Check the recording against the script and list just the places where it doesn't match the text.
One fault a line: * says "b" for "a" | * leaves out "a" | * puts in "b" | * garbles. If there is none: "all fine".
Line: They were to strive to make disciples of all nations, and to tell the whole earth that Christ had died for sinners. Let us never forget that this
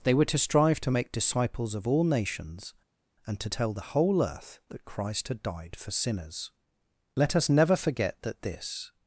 all fine